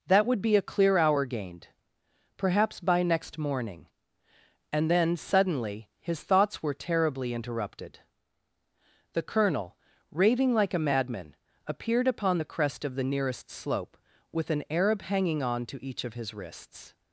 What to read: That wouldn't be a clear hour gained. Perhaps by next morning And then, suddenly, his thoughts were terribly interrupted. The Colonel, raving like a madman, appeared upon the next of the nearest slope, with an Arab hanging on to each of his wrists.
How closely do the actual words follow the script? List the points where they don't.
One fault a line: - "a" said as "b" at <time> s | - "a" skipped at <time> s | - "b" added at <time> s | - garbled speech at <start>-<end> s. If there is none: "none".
- "wouldn't" said as "would" at 0.2 s
- "next" said as "crest" at 12.4 s